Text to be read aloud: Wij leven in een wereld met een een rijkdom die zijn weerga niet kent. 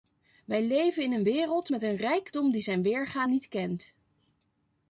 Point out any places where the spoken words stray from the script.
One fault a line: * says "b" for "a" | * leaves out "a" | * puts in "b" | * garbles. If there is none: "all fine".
* leaves out "een"